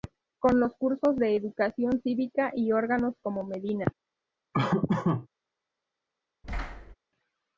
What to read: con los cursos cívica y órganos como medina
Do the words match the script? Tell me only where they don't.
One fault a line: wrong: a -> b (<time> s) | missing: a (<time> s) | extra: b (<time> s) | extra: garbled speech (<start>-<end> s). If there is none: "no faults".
extra: de educación (1.1 s)